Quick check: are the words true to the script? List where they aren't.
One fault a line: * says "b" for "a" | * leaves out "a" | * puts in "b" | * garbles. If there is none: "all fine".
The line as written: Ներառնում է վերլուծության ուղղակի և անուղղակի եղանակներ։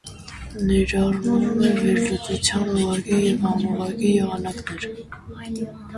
all fine